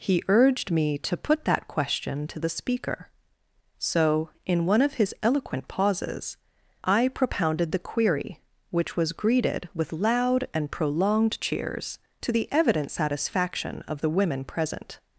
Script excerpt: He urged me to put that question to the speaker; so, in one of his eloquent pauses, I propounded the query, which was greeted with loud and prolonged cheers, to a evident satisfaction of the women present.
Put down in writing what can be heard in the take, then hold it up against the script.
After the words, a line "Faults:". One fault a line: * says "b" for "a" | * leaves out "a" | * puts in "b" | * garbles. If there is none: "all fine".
He urged me to put that question to the speaker; so, in one of his eloquent pauses, I propounded the query, which was greeted with loud and prolonged cheers, to the evident satisfaction of the women present.
Faults:
* says "the" for "a"